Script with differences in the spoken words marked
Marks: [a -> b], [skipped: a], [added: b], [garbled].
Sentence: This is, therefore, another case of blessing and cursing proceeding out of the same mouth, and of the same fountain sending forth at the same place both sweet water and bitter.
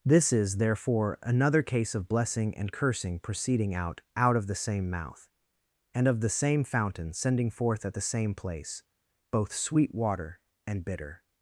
This is, therefore, another case of blessing and cursing proceeding out [added: out] of the same mouth, and of the same fountain sending forth at the same place both sweet water and bitter.